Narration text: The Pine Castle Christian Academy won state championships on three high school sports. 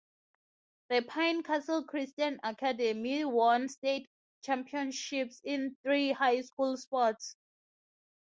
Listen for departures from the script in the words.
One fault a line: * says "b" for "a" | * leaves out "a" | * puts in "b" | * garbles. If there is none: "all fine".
* says "in" for "on"